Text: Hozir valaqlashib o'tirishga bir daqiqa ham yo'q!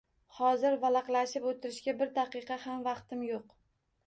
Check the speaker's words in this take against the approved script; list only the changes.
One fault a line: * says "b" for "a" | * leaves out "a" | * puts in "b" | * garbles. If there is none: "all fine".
* puts in "vaqtim"